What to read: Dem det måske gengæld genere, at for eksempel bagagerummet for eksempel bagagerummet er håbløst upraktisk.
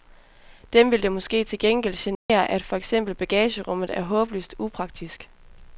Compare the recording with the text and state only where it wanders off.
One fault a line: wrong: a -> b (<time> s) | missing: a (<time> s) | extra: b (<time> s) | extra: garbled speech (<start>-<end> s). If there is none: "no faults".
extra: vil (0.9 s)
extra: til (1.4 s)
missing: for eksempel bagagerummet (4.0 s)